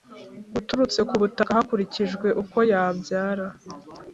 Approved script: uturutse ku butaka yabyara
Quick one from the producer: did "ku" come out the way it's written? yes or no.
yes